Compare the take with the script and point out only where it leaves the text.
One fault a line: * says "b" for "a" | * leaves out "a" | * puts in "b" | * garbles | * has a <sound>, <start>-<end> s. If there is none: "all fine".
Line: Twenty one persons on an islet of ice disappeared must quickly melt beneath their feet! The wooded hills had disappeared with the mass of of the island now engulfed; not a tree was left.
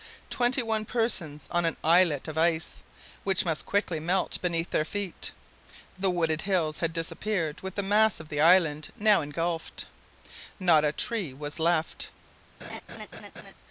* says "which" for "disappeared"
* leaves out "of"
* has a laugh, 12.6-13.5 s